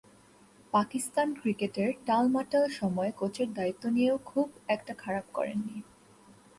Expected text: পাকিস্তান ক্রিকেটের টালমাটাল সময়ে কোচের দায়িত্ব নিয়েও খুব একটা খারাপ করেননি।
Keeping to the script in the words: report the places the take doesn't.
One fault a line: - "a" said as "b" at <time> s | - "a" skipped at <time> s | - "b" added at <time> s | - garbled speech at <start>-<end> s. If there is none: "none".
none